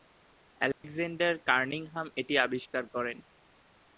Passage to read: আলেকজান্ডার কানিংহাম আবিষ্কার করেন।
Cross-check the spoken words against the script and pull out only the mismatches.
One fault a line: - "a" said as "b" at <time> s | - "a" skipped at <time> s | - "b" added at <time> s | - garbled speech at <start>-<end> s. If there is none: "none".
- "এটি" added at 2.2 s